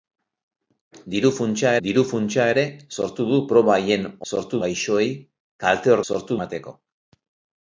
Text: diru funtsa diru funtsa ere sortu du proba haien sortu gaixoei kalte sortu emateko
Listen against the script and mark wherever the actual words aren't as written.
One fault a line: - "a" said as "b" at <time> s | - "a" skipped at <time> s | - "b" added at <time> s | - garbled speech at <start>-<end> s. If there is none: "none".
none